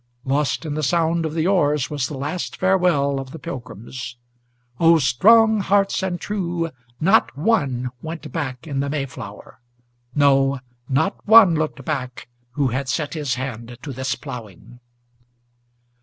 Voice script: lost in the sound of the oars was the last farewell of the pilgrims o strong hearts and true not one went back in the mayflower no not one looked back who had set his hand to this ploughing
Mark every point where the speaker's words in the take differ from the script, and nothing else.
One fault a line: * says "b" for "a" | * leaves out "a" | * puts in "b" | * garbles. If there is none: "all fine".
all fine